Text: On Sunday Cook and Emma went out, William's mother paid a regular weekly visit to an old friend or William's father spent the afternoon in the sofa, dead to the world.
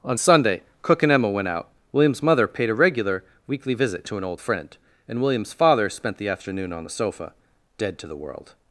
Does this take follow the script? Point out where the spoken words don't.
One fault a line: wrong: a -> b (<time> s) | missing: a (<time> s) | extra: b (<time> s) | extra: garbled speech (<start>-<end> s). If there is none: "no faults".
wrong: or -> and (5.1 s)
wrong: in -> on (6.7 s)